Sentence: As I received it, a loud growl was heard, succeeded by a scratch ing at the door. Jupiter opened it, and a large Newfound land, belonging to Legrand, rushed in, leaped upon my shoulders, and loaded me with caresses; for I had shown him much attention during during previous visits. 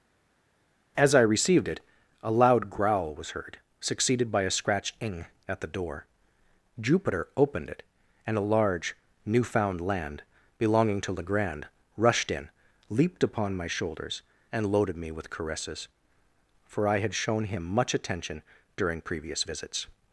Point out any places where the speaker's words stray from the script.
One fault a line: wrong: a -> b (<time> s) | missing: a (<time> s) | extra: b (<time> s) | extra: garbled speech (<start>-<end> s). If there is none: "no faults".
missing: during (19.0 s)